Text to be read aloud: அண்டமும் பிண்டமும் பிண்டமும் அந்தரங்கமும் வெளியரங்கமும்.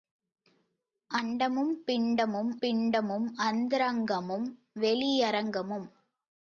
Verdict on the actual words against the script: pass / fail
pass